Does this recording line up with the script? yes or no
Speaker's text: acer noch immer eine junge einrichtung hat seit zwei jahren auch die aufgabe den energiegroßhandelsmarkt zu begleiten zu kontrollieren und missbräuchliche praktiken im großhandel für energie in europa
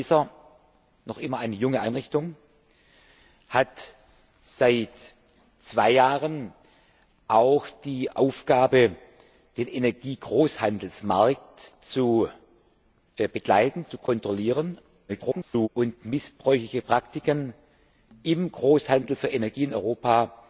no